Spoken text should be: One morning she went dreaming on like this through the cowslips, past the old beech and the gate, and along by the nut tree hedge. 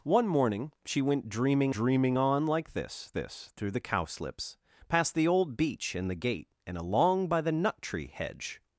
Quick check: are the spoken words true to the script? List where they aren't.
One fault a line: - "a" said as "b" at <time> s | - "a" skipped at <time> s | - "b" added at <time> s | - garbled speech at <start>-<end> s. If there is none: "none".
- "dreaming" added at 1.7 s
- "this" added at 3.1 s